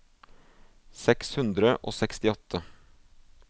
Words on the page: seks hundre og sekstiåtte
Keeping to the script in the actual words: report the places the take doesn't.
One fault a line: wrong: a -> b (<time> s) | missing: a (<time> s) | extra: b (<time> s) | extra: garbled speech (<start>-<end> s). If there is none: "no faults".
no faults